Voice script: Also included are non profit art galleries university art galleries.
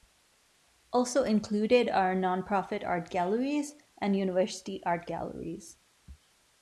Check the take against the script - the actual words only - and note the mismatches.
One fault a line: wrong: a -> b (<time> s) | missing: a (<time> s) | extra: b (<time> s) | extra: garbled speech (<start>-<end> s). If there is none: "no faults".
extra: and (4.0 s)